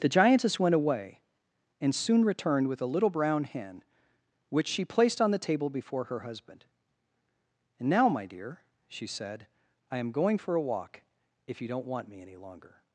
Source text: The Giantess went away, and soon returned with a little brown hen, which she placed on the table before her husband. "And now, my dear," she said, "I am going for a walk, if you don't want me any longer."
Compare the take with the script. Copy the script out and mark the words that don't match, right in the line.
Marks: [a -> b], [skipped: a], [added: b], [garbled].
The Giantess went away, and soon returned with a little brown hen, which she placed on the table before her husband. "And now, my dear," she said, "I am going for a walk, if you don't want me any longer."